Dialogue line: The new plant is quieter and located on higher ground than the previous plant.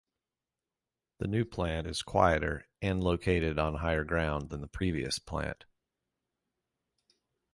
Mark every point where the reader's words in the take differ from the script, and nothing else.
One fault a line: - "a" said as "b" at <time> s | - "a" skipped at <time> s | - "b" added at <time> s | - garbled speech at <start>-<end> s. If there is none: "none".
none